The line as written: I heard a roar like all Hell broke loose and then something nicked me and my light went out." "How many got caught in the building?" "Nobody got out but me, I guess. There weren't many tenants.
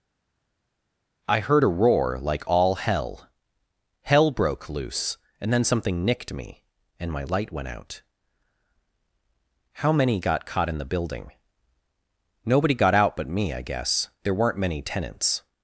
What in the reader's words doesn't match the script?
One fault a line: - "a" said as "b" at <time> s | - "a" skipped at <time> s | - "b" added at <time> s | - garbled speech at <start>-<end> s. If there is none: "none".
- "Hell" added at 4.0 s